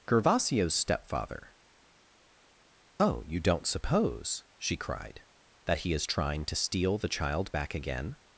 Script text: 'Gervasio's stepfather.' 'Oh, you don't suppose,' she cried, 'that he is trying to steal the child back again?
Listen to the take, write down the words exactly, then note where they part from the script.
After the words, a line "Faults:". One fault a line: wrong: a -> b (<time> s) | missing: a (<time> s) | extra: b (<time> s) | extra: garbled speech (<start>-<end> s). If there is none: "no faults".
'Gervasio's stepfather.' 'Oh, you don't suppose,' she cried, 'that he is trying to steal the child back again?
Faults:
no faults